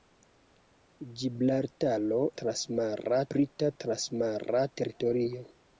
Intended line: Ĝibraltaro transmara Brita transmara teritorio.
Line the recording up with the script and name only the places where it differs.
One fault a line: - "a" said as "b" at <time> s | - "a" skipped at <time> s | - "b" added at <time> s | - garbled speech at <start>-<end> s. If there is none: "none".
none